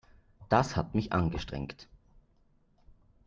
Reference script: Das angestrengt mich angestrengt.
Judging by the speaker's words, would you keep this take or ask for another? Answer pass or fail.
fail